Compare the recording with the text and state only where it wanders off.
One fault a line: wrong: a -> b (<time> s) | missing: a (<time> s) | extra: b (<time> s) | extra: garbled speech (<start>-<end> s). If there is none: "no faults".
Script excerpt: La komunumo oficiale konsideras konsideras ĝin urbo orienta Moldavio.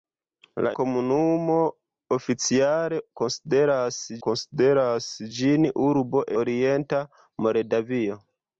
no faults